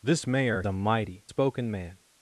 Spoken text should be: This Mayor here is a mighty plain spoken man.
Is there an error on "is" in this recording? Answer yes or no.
yes